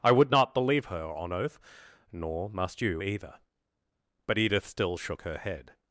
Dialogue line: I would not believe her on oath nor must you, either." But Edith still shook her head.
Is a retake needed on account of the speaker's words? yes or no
no